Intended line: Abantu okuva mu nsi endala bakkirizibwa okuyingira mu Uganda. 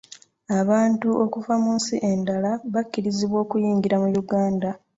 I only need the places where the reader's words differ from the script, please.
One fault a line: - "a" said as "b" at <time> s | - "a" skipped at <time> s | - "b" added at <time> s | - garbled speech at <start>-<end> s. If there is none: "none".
none